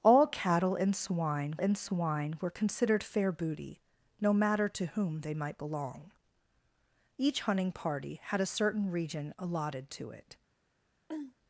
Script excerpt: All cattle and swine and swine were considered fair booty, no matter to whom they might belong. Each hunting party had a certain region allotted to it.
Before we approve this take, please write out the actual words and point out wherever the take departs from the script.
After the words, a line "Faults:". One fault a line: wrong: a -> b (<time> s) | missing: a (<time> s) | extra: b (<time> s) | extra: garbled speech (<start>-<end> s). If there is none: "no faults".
All cattle and swine and swine were considered fair booty, no matter to whom they might belong. Each hunting party had a certain region allotted to it.
Faults:
no faults